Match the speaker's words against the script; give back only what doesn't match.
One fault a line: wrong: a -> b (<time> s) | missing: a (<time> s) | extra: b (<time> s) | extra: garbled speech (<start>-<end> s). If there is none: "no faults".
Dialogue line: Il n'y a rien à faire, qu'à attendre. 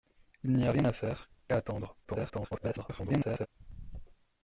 extra: garbled speech (2.0-3.5 s)